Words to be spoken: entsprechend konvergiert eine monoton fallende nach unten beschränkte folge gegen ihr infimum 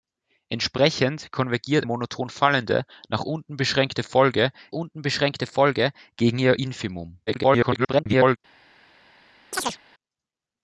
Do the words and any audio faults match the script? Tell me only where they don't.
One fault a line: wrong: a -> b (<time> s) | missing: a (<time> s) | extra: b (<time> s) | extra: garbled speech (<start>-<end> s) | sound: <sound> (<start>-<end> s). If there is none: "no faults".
missing: eine (1.9 s)
extra: unten beschränkte folge (4.7 s)
extra: garbled speech (7.3-8.4 s)
sound: chirp (9.5-9.8 s)